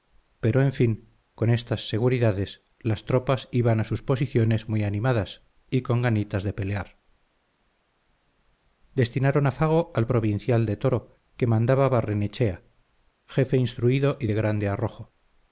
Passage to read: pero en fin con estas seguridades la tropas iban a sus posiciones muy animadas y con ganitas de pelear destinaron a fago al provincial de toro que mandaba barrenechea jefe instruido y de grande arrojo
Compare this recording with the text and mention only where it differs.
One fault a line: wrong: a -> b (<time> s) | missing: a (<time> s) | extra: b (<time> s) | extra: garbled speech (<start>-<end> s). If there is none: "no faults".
wrong: la -> las (2.8 s)